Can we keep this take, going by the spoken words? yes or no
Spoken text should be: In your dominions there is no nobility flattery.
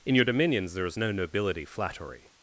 yes